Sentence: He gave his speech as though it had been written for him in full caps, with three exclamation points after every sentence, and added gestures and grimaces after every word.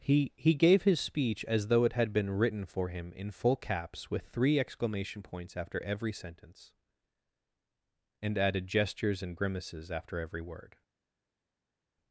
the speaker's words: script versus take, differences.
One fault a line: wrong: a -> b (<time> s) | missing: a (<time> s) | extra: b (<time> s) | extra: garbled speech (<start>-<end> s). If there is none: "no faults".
extra: he (0.3 s)